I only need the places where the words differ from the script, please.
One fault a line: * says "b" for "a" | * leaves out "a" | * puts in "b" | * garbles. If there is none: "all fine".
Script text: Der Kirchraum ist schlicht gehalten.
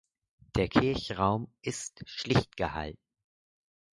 all fine